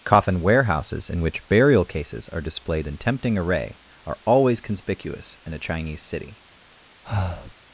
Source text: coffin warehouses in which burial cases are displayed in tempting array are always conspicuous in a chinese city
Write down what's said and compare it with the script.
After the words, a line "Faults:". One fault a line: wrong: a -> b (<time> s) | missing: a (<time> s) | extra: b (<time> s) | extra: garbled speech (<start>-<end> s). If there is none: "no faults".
coffin warehouses in which burial cases are displayed in tempting array are always conspicuous in a chinese city
Faults:
no faults